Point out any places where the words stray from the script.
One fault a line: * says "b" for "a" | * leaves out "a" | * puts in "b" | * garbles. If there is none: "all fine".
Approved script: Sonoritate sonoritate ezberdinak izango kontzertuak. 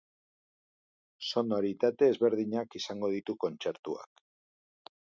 * leaves out "sonoritate"
* puts in "ditu"